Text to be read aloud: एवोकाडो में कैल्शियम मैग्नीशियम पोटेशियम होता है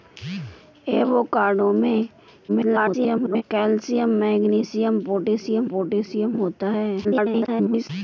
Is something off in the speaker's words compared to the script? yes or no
yes